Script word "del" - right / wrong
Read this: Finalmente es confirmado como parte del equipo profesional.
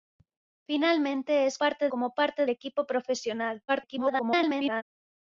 wrong